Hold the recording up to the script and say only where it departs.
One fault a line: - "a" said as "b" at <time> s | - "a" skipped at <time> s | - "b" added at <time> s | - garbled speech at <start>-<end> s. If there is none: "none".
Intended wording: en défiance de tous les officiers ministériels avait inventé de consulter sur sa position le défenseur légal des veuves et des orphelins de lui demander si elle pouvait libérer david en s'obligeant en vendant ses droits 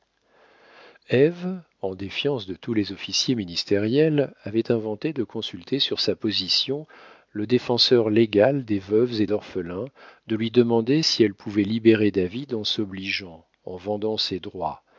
- "des" skipped at 9.3 s